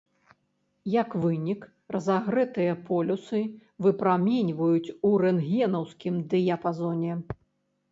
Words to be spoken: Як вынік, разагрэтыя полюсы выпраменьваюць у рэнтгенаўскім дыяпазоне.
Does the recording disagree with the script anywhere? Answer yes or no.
no